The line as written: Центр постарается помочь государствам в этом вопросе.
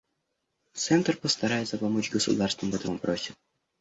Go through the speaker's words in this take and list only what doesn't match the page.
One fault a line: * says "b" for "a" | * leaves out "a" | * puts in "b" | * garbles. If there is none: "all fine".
all fine